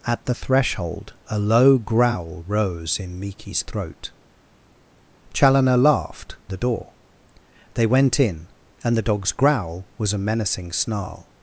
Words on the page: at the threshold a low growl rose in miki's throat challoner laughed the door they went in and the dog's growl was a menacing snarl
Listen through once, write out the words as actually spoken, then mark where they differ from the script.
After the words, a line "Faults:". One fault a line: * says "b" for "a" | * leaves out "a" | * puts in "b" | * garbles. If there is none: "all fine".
at the threshold a low growl rose in miki's throat challoner laughed the door they went in and the dog's growl was a menacing snarl
Faults:
all fine